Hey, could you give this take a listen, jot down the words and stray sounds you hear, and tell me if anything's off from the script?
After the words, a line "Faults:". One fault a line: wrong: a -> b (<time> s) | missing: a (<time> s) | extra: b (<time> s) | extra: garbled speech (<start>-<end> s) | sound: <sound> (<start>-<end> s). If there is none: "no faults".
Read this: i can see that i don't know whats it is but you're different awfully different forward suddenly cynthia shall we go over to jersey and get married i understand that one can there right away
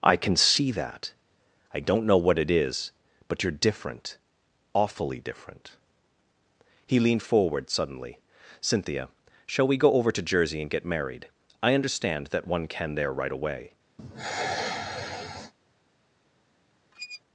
i can see that i don't know what it is but you're different awfully different he leaned forward suddenly cynthia shall we go over to jersey and get married i understand that one can there right away
Faults:
wrong: whats -> what (2.2 s)
extra: he leaned (6.9 s)
sound: sigh (14.0-15.5 s)
sound: squeak (16.9-17.2 s)